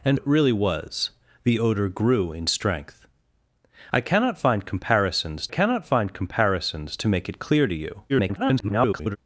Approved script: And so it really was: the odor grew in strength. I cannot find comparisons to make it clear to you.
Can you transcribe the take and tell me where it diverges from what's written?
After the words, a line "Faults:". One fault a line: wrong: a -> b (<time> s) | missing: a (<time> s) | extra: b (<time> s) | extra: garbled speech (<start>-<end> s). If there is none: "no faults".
And it really was: the odor grew in strength. I cannot find comparisons cannot find comparisons to make it clear to you. [garbled]
Faults:
missing: so (0.2 s)
extra: cannot find comparisons (5.5 s)
extra: garbled speech (8.1-9.2 s)